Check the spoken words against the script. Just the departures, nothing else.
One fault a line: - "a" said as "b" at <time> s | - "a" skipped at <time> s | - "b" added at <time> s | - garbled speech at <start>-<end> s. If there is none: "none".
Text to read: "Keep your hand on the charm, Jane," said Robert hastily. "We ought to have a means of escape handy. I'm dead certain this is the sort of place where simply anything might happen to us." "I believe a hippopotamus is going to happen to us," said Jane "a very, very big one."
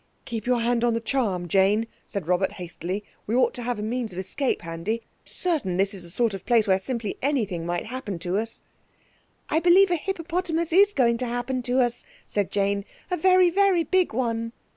- "I'm dead" skipped at 5.0 s